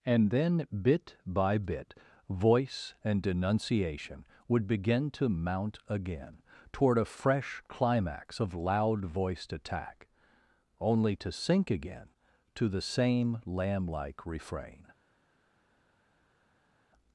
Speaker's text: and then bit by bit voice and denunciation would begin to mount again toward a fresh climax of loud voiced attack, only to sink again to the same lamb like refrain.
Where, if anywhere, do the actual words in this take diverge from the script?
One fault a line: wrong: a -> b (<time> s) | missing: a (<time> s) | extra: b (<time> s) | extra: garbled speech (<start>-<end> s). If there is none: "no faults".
no faults